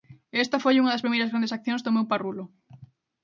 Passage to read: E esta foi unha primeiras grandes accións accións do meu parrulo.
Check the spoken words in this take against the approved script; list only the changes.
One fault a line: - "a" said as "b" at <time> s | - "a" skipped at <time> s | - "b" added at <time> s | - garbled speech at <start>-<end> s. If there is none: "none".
- "das" added at 0.9 s
- "accións" skipped at 1.8 s